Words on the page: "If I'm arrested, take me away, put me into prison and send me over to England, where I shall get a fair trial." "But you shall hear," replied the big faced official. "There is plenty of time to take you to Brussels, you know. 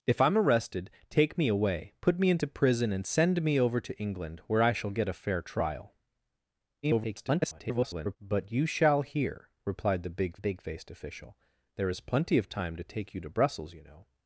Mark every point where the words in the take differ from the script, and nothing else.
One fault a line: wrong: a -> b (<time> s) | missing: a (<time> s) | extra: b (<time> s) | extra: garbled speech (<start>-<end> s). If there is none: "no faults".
extra: garbled speech (6.8-8.2 s)
extra: big (10.4 s)